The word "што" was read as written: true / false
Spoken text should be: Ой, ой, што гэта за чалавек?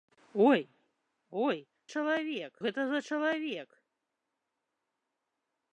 false